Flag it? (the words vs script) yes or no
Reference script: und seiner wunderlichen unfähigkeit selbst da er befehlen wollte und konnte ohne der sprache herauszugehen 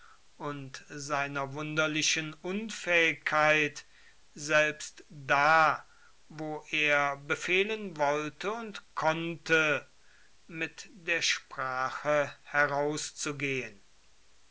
yes